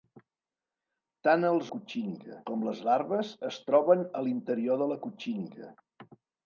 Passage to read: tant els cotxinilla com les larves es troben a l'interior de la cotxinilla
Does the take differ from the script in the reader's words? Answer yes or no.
no